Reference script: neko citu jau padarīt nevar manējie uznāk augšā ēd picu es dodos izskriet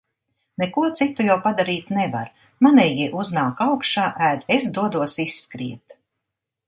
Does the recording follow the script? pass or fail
fail